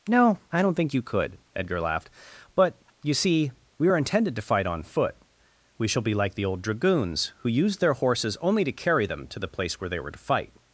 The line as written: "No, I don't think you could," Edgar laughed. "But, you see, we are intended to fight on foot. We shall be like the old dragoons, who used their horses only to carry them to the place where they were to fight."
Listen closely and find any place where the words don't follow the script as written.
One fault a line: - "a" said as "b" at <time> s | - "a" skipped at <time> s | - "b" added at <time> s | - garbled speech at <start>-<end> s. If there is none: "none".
none